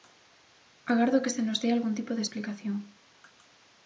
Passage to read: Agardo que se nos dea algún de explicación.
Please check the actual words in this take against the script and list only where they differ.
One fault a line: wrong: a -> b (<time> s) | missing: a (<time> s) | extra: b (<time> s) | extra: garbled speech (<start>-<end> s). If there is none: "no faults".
extra: tipo (1.9 s)